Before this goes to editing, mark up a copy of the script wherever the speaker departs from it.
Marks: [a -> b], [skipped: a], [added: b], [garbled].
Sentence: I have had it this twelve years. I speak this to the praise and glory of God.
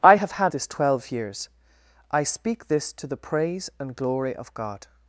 I have had [skipped: it] this twelve years. I speak this to the praise and glory of God.